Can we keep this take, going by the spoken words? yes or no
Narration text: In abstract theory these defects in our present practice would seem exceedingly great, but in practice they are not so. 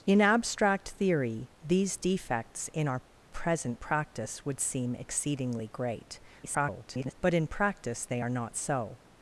no